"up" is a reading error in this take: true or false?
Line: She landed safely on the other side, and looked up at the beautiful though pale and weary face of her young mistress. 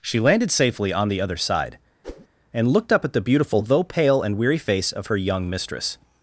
false